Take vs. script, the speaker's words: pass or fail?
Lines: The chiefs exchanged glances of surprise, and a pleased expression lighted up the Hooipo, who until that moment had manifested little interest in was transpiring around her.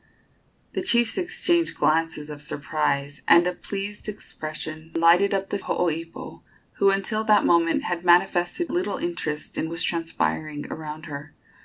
pass